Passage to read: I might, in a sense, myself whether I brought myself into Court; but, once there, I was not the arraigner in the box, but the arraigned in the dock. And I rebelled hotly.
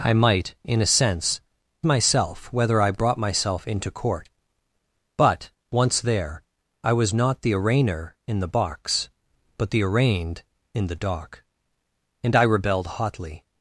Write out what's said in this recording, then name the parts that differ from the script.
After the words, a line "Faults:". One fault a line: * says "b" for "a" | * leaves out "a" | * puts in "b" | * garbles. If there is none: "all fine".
I might, in a sense, myself whether I brought myself into Court; but, once there, I was not the arraigner in the box, but the arraigned in the dock. And I rebelled hotly.
Faults:
all fine